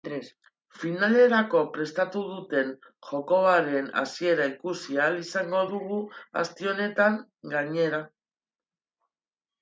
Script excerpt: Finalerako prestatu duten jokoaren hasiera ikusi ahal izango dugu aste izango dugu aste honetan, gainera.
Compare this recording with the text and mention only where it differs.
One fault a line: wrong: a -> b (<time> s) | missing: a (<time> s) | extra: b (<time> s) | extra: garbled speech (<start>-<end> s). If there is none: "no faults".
missing: izango dugu aste (6.7 s)